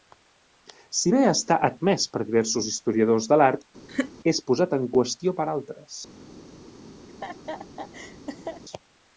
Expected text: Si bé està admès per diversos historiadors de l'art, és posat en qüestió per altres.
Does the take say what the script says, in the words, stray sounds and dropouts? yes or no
no